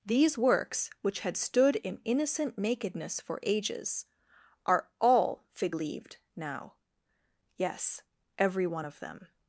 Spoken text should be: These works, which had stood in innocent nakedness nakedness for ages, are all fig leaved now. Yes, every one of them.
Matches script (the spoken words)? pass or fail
fail